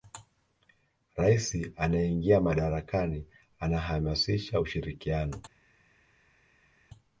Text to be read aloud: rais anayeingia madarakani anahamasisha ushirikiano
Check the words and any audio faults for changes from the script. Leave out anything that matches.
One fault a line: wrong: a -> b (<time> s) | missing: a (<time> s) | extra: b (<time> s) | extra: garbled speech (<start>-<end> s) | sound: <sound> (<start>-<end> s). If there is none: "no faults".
no faults